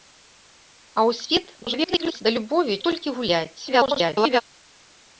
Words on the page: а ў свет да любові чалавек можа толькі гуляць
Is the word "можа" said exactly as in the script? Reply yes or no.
no